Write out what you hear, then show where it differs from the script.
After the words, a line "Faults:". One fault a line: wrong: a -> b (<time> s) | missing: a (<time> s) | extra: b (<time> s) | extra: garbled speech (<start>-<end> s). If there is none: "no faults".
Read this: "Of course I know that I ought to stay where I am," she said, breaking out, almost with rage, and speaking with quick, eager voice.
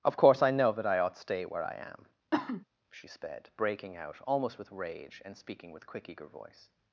"Of course I know that I ought stay where I am," she sped, breaking out, almost with rage, and speaking with quick, eager voice.
Faults:
missing: to (1.2 s)
wrong: said -> sped (3.1 s)